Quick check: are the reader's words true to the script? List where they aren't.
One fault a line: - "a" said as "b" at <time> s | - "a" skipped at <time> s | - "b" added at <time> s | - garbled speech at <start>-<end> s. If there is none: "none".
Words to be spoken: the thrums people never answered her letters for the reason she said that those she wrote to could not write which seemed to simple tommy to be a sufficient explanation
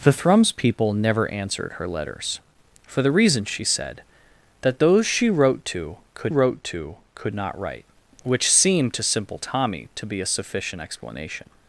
- "wrote to could" added at 6.3 s